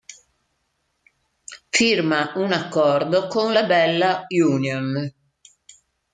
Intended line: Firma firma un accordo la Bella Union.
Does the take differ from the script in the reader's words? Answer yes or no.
yes